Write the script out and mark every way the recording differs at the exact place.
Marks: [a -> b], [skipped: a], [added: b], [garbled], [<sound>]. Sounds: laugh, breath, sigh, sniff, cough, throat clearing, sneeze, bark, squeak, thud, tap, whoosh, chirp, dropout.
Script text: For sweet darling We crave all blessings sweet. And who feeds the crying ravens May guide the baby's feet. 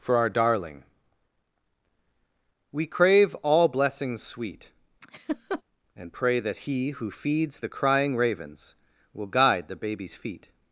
For [sweet -> our] darling We crave all blessings sweet. [laugh] And [added: pray that He] who feeds the crying ravens [May -> Will] guide the baby's feet.